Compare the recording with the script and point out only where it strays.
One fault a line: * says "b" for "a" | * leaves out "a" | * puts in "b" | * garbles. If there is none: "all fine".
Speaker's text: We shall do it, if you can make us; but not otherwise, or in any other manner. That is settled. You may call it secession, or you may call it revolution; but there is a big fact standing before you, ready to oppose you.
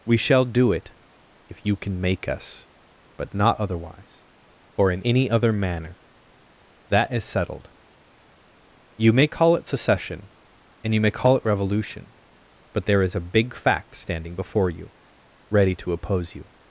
* says "and" for "or"